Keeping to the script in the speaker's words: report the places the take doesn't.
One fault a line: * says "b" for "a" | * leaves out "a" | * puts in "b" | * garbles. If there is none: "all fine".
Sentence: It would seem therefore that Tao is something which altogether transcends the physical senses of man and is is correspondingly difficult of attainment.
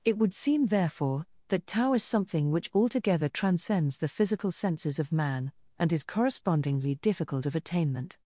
* leaves out "is"